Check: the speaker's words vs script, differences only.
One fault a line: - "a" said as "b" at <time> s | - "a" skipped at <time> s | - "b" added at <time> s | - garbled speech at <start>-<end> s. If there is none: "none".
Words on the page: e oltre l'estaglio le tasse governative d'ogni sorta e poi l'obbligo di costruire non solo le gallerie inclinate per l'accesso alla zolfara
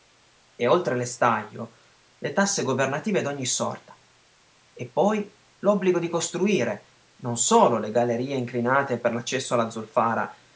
none